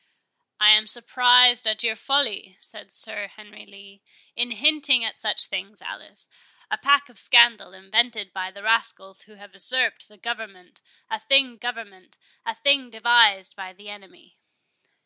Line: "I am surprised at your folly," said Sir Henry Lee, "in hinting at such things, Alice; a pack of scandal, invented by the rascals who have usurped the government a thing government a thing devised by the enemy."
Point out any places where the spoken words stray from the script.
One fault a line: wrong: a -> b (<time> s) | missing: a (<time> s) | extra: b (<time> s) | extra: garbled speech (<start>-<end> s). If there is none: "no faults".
no faults